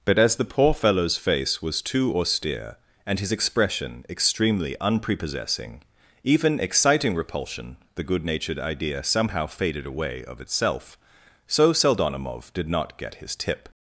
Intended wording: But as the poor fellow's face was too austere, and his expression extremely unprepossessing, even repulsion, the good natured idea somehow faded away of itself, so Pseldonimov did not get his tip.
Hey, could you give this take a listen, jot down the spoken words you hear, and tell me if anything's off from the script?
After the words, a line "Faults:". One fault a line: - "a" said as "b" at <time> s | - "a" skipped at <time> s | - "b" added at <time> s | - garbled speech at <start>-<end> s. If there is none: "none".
But as the poor fellow's face was too austere, and his expression extremely unprepossessing, even exciting repulsion, the good natured idea somehow faded away of itself, so Pseldonimov did not get his tip.
Faults:
- "exciting" added at 6.6 s